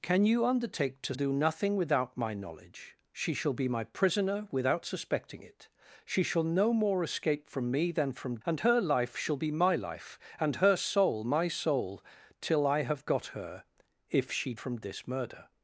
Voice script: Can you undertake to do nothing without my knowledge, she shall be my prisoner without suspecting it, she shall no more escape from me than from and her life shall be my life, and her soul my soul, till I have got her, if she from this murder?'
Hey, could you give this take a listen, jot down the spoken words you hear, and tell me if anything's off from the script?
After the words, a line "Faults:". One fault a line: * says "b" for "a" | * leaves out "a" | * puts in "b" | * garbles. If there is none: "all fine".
Can you undertake to do nothing without my knowledge, she shall be my prisoner without suspecting it, she shall no more escape from me than from and her life shall be my life, and her soul my soul, till I have got her, if she from this murder?'
Faults:
all fine